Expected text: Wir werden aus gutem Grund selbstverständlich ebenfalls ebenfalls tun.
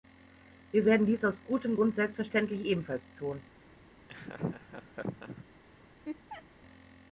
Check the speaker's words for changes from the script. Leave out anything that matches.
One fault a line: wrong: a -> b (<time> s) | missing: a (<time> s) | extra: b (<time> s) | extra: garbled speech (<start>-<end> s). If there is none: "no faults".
extra: dies (1.1 s)
missing: ebenfalls (3.0 s)